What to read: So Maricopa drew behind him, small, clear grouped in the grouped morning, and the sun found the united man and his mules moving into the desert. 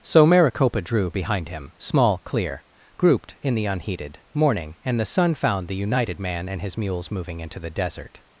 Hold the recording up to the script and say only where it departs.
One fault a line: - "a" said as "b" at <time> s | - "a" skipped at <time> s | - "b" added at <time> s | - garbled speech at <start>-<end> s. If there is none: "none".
- "grouped" said as "unheated" at 3.6 s